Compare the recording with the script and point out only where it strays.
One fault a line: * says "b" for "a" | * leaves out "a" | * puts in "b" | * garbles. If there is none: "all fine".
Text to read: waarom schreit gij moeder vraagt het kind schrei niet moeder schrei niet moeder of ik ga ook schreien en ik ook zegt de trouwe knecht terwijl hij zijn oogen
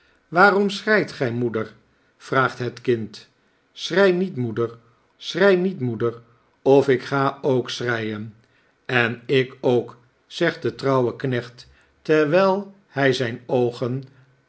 all fine